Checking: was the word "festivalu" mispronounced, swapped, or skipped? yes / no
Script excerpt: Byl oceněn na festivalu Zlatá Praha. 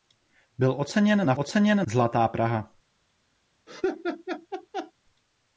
yes